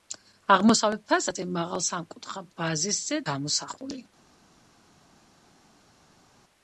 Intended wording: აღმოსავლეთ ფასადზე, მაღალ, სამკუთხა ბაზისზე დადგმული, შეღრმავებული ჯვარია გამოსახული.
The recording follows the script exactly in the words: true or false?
false